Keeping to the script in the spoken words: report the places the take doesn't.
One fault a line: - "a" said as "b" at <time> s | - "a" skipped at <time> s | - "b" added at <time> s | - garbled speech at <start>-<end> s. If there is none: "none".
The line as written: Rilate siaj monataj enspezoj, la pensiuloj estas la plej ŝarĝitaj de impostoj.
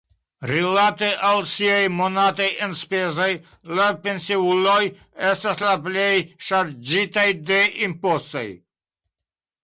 - "al" added at 1.3 s